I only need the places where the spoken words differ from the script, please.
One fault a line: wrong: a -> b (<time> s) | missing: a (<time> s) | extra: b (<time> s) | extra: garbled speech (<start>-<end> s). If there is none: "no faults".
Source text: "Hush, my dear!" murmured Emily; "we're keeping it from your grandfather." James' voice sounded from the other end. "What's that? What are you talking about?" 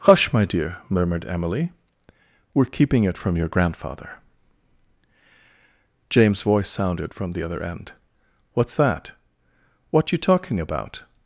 missing: are (10.1 s)